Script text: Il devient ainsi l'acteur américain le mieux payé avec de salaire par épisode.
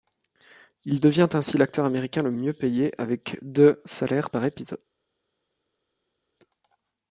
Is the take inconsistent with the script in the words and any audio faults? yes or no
no